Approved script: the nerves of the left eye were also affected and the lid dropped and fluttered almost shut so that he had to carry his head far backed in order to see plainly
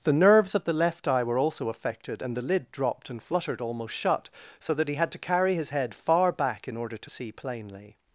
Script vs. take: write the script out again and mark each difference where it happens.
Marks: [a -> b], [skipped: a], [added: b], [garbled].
the nerves of the left eye were also affected and the lid dropped and fluttered almost shut so that he had to carry his head far [backed -> back] in order to see plainly